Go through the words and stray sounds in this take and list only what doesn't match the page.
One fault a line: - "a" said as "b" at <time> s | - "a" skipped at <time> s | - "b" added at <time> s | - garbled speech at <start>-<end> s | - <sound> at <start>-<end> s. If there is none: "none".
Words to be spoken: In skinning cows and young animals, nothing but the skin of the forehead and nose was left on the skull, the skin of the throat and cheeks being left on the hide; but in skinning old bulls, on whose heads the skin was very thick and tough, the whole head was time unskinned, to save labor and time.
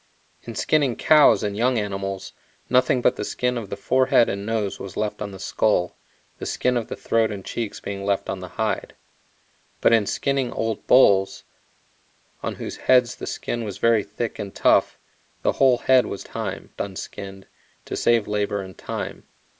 none